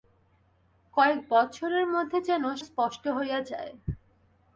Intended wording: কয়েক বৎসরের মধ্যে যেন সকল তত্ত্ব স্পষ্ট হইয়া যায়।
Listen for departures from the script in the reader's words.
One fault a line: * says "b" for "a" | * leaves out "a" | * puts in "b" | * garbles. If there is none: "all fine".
* leaves out "সকল তত্ত্ব"